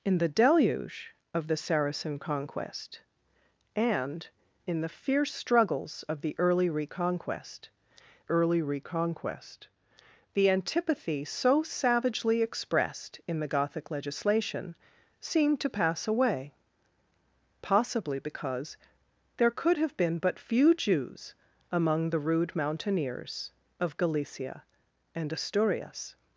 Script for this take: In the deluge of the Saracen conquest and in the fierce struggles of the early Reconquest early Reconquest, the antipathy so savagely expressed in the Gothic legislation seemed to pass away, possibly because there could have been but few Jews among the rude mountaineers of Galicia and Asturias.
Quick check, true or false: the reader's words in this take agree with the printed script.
true